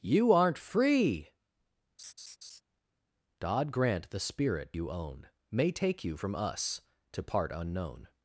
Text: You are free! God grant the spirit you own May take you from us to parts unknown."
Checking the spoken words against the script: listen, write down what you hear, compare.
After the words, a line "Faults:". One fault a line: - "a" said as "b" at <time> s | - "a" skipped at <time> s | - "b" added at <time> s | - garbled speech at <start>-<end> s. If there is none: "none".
You aren't free! God grant the spirit you own May take you from us to part unknown."
Faults:
- "are" said as "aren't" at 0.3 s
- "parts" said as "part" at 7.2 s